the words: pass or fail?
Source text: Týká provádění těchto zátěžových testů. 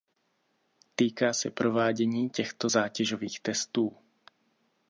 fail